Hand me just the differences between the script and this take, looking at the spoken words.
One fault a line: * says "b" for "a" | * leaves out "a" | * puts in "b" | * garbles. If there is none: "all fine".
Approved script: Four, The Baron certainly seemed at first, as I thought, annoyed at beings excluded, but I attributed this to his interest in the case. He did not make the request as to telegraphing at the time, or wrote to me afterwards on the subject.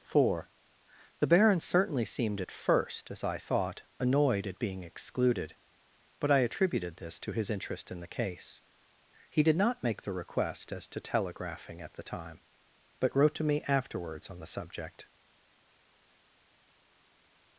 * says "being" for "beings"
* says "but" for "or"